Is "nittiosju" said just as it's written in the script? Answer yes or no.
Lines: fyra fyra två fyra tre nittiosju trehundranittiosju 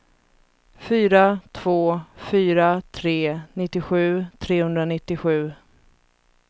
yes